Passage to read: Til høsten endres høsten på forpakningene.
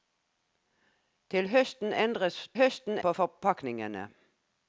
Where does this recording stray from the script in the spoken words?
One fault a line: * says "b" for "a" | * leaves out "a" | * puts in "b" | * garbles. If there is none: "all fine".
all fine